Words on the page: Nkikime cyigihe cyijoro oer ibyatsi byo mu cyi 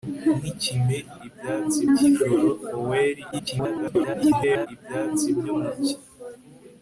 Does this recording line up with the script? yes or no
no